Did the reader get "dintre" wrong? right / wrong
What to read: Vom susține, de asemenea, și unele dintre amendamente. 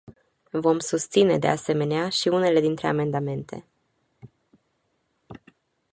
right